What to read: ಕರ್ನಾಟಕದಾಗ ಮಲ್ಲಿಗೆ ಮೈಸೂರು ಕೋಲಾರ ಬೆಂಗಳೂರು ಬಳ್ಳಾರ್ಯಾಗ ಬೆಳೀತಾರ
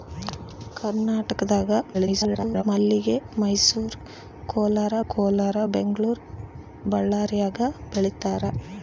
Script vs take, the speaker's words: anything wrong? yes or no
yes